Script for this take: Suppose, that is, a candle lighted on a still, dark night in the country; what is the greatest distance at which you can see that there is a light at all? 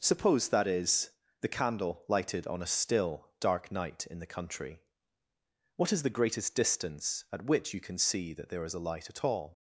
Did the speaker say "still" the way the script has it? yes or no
yes